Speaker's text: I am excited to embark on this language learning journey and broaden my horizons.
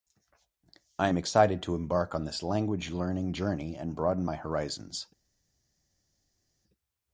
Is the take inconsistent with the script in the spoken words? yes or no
no